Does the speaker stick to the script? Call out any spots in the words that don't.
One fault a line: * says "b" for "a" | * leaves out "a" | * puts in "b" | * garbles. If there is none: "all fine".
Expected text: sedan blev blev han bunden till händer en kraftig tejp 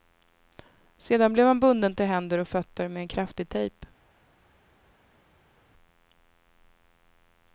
* leaves out "blev"
* puts in "och fötter med"